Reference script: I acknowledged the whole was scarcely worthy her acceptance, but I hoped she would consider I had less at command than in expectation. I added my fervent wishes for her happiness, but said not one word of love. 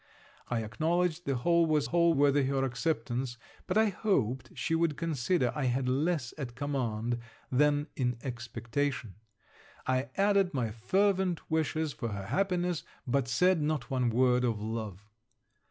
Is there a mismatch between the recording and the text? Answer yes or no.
yes